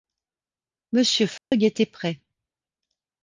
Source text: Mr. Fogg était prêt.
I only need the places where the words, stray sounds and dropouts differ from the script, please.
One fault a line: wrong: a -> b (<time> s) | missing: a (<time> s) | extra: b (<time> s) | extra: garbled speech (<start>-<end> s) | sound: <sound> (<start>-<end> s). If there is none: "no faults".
sound: dropout (1.4-1.5 s)